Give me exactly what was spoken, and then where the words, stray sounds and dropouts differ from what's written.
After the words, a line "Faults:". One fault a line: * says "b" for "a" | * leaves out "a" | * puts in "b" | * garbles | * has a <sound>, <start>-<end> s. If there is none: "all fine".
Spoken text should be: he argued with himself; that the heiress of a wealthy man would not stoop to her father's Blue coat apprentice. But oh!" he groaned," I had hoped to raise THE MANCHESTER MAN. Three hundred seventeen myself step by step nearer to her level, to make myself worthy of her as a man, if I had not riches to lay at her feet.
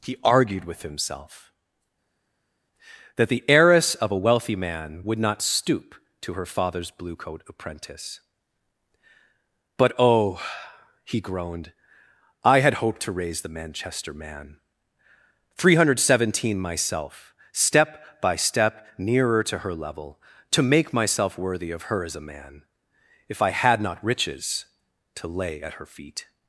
he argued with himself; that the heiress of a wealthy man would not stoop to her father's Blue coat apprentice. But oh!" he groaned," I had hoped to raise THE MANCHESTER MAN. Three hundred seventeen myself step by step nearer to her level, to make myself worthy of her as a man, if I had not riches to lay at her feet.
Faults:
all fine